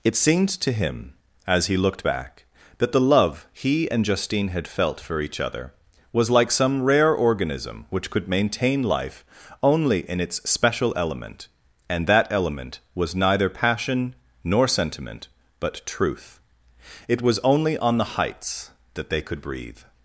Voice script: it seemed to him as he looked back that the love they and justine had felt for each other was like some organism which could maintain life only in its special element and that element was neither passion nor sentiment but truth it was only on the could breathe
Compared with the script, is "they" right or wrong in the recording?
wrong